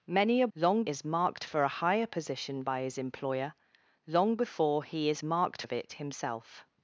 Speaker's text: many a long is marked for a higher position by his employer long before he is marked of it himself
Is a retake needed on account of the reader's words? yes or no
no